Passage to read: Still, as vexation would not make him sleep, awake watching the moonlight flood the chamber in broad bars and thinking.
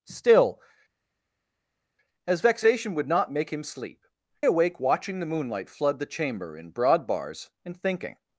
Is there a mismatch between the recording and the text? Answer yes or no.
no